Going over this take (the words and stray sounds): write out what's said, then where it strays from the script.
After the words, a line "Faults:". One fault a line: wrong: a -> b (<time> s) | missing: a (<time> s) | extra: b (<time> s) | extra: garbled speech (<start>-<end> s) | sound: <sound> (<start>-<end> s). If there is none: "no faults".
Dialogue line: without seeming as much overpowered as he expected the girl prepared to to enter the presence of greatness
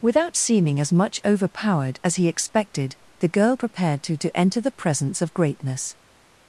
without seeming as much overpowered as he expected the girl prepared to to enter the presence of greatness
Faults:
no faults